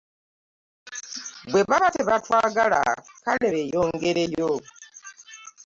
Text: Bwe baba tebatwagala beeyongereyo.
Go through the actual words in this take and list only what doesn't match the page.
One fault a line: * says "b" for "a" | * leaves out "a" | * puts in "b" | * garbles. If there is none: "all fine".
* puts in "kale"